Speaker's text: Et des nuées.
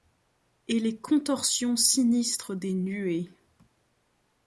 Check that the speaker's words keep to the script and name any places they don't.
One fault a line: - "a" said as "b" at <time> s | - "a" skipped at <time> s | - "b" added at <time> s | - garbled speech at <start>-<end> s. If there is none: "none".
- "les contorsions sinistres" added at 0.8 s